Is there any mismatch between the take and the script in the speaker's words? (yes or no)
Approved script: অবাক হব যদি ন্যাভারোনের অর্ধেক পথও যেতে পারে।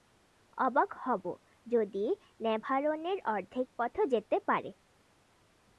no